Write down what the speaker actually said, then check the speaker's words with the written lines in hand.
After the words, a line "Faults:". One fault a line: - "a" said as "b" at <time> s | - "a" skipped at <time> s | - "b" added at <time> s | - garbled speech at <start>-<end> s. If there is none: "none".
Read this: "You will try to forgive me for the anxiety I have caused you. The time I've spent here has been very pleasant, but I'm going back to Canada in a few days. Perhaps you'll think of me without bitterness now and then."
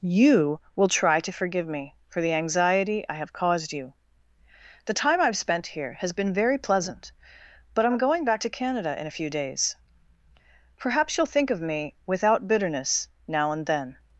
"You will try to forgive me for the anxiety I have caused you. The time I've spent here has been very pleasant, but I'm going back to Canada in a few days. Perhaps you'll think of me without bitterness now and then."
Faults:
none